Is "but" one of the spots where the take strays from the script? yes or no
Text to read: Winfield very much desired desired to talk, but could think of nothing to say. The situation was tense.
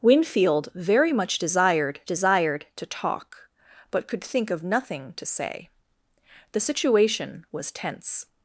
no